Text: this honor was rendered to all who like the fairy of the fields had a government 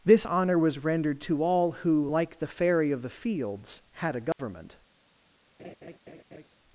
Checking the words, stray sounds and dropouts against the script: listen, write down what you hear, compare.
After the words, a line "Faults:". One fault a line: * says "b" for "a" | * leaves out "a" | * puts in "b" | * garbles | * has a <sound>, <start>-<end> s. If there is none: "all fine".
this honor was rendered to all who like the fairy of the fields had a government
Faults:
* has a dropout, 4.3-4.4 s
* has a laugh, 5.6-6.5 s